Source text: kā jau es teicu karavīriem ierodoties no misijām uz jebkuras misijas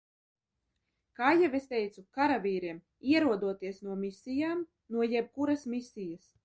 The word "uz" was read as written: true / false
false